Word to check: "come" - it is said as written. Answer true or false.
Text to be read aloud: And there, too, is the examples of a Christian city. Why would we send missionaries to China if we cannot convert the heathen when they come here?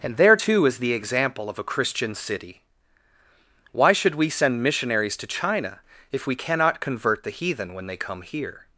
true